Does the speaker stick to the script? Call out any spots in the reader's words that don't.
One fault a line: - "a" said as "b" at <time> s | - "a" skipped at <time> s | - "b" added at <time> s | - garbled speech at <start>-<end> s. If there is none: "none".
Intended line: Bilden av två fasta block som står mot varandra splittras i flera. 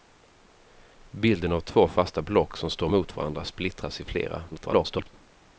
- garbled speech at 4.5-5.1 s